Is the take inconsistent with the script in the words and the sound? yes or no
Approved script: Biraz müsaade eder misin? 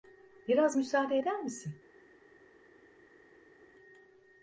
no